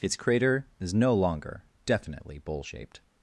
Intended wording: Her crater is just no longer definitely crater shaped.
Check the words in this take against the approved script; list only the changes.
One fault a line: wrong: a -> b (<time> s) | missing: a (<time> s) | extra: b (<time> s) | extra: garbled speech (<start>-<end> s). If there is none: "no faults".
wrong: Her -> Its (0.0 s)
missing: just (0.9 s)
wrong: crater -> bowl (2.4 s)